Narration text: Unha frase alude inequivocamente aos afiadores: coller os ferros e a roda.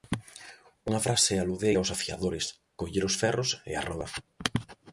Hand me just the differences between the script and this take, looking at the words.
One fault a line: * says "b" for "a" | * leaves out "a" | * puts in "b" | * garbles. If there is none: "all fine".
* leaves out "inequivocamente"